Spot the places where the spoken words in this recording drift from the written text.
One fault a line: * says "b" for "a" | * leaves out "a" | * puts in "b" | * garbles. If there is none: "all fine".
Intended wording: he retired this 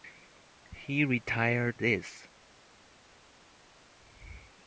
all fine